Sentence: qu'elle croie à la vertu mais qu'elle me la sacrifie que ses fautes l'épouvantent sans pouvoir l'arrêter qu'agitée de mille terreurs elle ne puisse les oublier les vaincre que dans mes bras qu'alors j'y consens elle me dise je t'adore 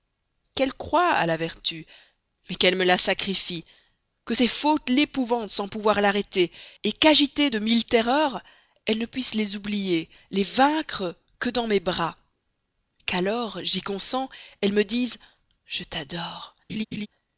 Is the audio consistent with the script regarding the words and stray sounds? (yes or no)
no